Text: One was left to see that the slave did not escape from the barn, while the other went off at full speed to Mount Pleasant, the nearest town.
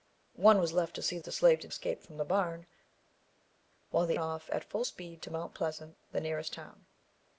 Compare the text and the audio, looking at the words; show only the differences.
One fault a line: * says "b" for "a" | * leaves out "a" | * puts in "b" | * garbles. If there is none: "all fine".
* leaves out "that"
* leaves out "not"
* leaves out "other went"